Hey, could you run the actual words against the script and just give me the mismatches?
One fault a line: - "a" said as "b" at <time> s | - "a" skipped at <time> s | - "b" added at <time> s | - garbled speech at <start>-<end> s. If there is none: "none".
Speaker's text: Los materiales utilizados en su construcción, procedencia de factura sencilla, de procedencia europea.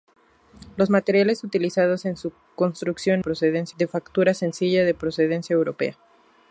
none